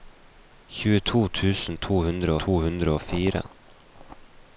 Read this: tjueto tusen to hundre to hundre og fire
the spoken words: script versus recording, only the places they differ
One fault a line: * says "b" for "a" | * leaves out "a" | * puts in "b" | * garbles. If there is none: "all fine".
all fine